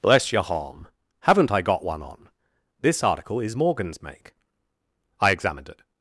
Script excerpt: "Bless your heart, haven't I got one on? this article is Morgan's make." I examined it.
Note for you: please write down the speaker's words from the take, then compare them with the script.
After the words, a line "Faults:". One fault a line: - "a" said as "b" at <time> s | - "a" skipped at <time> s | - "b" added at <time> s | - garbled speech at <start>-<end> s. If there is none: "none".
"Bless your harm, haven't I got one on? this article is Morgan's make." I examined it.
Faults:
- "heart" said as "harm" at 0.4 s